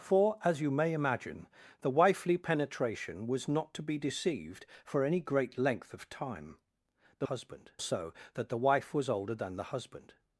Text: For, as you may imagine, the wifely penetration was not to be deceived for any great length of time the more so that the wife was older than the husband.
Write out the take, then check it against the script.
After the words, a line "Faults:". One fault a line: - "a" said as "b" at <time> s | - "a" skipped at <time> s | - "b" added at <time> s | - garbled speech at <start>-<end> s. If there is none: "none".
For, as you may imagine, the wifely penetration was not to be deceived for any great length of time the husband so that the wife was older than the husband.
Faults:
- "more" said as "husband" at 7.2 s